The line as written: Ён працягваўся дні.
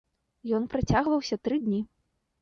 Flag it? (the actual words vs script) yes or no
yes